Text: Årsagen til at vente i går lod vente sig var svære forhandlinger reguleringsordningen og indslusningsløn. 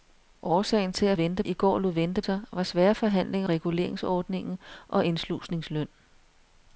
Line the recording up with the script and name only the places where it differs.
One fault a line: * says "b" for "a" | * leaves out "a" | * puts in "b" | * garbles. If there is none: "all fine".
all fine